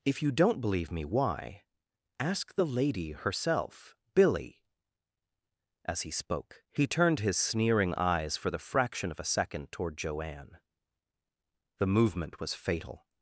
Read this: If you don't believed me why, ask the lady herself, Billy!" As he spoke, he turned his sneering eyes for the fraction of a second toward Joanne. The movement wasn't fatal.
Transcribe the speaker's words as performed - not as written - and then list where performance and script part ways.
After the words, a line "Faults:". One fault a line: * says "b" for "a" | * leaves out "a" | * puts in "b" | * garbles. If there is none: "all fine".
If you don't believe me why, ask the lady herself, Billy!" As he spoke, he turned his sneering eyes for the fraction of a second toward Joanne. The movement was fatal.
Faults:
* says "believe" for "believed"
* says "was" for "wasn't"